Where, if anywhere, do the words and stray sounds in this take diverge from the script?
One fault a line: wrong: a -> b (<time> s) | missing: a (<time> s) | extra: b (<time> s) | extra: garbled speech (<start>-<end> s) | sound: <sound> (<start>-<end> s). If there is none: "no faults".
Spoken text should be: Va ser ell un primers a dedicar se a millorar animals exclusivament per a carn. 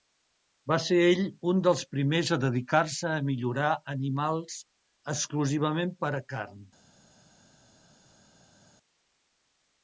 extra: dels (1.7 s)